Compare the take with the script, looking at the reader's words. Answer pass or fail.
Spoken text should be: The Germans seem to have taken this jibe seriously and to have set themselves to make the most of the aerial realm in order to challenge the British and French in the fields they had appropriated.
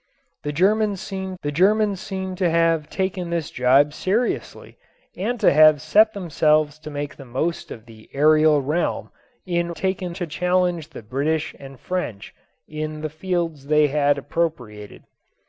fail